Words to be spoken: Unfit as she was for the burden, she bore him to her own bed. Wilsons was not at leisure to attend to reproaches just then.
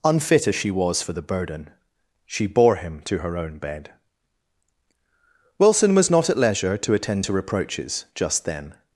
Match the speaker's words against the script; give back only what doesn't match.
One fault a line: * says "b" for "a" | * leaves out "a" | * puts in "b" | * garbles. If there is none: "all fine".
* says "Wilson" for "Wilsons"